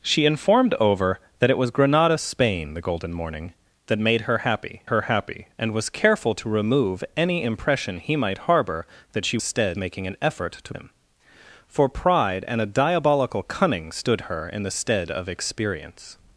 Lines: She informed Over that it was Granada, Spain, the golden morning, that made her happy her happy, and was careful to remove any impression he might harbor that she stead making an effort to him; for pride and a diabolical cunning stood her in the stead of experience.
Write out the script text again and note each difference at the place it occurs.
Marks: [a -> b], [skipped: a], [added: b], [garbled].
She informed Over that it was Granada, Spain, the golden morning, that made her happy her happy, and was careful to remove any impression he might harbor that she stead making an effort to him; for pride and a diabolical cunning stood her in the stead of experience.